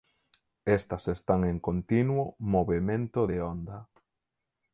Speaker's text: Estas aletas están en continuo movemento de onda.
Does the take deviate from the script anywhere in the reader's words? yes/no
yes